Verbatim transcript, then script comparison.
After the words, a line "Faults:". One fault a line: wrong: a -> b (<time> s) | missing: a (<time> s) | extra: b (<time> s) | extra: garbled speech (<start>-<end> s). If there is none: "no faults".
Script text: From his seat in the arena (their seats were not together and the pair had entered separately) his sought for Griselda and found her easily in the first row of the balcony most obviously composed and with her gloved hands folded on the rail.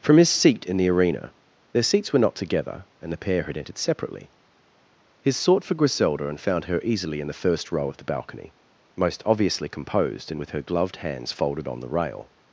From his seat in the arena (their seats were not together and the pair had entered separately) his sought for Griselda and found her easily in the first row of the balcony most obviously composed and with her gloved hands folded on the rail.
Faults:
no faults